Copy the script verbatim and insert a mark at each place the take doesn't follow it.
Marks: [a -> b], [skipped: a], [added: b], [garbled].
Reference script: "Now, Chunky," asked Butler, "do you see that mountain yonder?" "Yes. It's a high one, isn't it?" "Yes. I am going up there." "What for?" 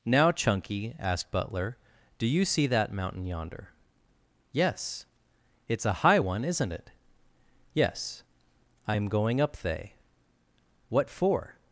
"Now, Chunky," asked Butler, "do you see that mountain yonder?" "Yes. It's a high one, isn't it?" "Yes. I am going up [there." -> they] "What for?"